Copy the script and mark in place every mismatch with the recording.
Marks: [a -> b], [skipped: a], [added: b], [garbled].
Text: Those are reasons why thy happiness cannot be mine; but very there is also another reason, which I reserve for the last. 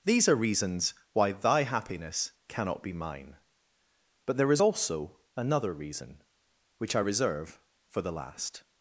[Those -> These] are reasons why thy happiness cannot be mine; but [skipped: very] there is also another reason, which I reserve for the last.